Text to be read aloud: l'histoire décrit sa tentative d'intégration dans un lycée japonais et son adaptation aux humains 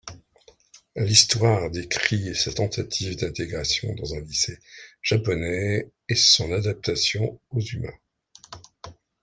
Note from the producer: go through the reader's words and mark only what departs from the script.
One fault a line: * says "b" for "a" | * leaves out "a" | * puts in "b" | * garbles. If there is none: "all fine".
all fine